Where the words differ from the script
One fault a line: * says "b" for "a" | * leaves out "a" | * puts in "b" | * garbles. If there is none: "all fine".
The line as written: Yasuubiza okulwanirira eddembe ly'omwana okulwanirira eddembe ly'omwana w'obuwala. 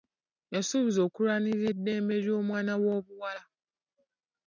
* leaves out "okulwanirira eddembe ly'omwana"